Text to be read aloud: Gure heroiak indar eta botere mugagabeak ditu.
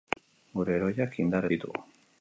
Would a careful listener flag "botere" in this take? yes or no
yes